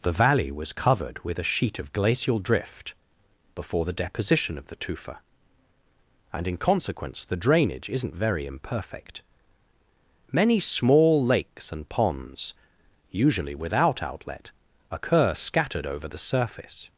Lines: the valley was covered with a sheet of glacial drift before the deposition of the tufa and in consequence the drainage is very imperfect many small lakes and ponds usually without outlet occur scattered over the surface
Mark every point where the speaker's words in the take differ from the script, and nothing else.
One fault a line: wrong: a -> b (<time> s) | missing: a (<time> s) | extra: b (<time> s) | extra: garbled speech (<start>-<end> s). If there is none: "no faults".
wrong: is -> isn't (7.9 s)